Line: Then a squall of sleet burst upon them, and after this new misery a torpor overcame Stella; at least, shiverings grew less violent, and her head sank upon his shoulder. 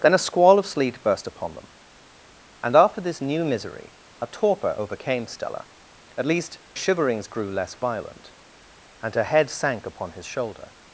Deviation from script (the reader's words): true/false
false